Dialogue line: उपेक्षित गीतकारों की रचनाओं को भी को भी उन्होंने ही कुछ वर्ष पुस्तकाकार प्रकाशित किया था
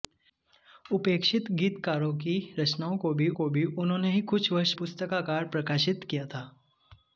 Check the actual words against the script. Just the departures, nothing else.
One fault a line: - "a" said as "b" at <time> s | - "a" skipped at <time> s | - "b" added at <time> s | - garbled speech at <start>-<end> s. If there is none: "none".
none